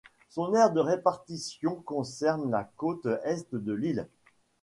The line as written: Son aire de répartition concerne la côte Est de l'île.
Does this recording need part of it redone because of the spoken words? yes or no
no